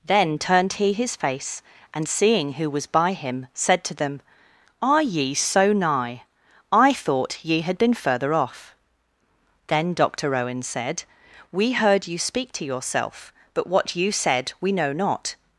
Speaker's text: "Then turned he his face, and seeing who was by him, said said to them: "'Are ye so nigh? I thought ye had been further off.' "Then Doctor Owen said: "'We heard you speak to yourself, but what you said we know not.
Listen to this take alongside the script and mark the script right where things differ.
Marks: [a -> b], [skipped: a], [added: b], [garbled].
"Then turned he his face, and seeing who was by him, said [skipped: said] to them: "'Are ye so nigh? I thought ye had been further off.' "Then Doctor Owen said: "'We heard you speak to yourself, but what you said we know not.